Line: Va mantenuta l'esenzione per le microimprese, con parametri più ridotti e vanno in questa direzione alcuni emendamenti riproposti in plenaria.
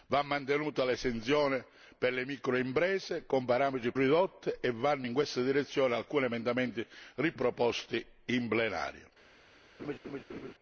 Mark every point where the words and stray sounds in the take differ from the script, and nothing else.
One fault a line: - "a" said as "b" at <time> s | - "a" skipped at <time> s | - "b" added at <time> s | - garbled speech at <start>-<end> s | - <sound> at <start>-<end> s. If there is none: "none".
- "più" skipped at 3.9 s
- laugh at 9.8-10.5 s